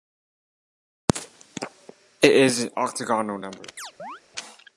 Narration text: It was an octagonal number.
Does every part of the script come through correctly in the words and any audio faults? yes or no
no